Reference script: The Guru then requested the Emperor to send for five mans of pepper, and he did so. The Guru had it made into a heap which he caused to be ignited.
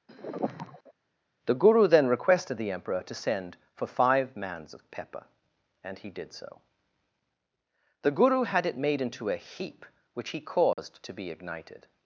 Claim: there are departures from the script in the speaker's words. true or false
false